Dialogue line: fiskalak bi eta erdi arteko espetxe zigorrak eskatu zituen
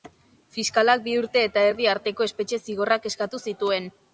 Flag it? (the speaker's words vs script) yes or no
yes